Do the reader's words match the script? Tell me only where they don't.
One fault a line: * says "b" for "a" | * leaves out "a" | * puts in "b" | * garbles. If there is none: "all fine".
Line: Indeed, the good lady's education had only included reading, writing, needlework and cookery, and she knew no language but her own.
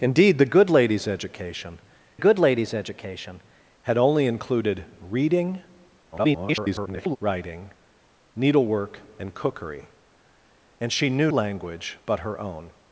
* puts in "good lady's education"
* garbles
* leaves out "no"